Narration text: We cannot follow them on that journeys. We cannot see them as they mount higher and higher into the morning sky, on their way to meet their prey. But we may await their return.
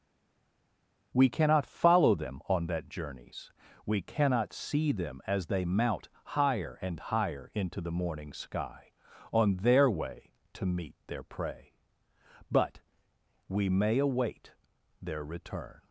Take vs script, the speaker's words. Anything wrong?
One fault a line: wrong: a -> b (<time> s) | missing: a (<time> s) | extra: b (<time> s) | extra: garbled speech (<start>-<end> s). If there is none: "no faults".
no faults